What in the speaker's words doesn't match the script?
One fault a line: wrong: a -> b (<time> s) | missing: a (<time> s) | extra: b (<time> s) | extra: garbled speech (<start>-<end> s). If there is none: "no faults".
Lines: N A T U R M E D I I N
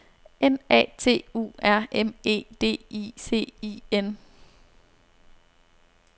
extra: C (3.1 s)